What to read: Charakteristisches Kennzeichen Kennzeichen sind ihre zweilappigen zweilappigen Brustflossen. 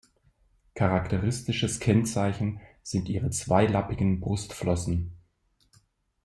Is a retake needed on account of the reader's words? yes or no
yes